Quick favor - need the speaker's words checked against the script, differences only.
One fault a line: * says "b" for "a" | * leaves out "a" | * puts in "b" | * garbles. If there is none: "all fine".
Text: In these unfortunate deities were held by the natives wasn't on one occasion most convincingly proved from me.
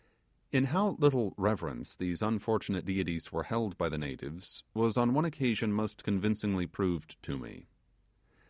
* puts in "how little reverence"
* says "was" for "wasn't"
* says "to" for "from"